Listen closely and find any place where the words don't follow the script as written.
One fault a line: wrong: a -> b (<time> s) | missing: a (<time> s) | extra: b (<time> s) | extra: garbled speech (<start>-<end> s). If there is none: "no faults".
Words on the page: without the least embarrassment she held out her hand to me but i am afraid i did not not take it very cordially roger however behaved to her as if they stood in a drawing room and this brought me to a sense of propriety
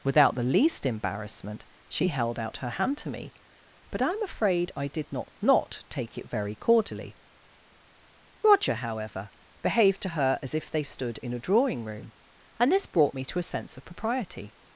no faults